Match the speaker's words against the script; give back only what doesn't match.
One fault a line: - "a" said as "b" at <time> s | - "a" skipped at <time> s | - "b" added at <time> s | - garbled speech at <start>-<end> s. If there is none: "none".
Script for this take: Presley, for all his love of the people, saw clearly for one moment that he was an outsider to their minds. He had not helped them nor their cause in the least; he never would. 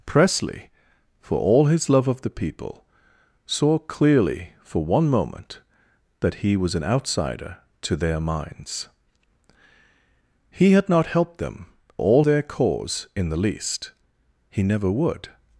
- "nor" said as "all" at 12.0 s